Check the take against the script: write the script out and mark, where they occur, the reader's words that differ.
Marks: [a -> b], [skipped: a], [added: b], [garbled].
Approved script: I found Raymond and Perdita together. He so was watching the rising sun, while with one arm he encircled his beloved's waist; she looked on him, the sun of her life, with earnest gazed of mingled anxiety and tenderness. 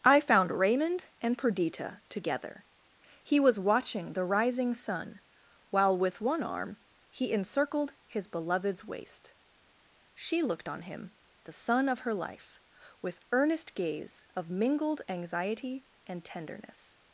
I found Raymond and Perdita together. He [skipped: so] was watching the rising sun, while with one arm he encircled his beloved's waist; she looked on him, the sun of her life, with earnest [gazed -> gaze] of mingled anxiety and tenderness.